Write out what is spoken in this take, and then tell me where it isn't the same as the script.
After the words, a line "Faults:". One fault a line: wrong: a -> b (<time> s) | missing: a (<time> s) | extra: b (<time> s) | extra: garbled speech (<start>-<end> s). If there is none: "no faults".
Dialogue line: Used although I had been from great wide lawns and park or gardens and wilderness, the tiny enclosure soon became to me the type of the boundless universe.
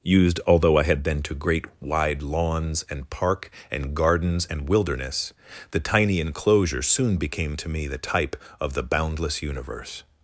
Used although I had been to great wide lawns and park and gardens and wilderness, the tiny enclosure soon became to me the type of the boundless universe.
Faults:
wrong: from -> to (1.2 s)
wrong: or -> and (3.7 s)